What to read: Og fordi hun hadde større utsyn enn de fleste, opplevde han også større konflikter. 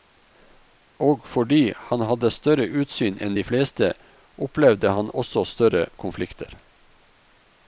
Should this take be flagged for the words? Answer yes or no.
yes